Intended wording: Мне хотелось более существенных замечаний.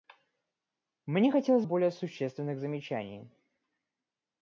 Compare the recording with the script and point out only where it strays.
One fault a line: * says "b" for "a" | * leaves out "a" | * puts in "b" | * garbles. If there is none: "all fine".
all fine